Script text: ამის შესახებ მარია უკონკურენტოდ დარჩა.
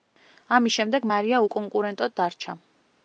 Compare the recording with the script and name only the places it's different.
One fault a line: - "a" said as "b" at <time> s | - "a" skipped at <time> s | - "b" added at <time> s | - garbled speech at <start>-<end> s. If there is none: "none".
- "შესახებ" said as "შემდეგ" at 0.8 s